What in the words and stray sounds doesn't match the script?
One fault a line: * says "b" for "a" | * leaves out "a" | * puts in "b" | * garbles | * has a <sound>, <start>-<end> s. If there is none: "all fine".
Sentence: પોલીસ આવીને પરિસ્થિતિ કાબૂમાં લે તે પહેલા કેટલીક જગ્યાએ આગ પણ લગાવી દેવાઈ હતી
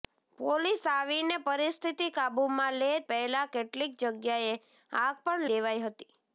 * leaves out "તે"
* leaves out "લગાવી"